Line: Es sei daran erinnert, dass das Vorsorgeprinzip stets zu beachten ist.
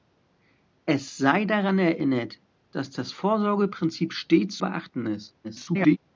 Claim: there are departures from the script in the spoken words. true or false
true